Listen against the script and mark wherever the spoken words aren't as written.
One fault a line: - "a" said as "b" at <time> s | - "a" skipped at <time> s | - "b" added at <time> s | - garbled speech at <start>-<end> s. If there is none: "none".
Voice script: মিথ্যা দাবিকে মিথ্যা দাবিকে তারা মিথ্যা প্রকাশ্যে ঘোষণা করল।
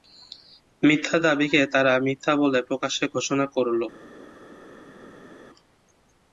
- "মিথ্যা দাবিকে" skipped at 1.6 s
- "বলে" added at 2.4 s